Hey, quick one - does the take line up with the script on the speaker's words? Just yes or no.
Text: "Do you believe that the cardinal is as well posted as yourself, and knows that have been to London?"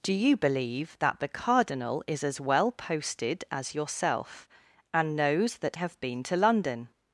yes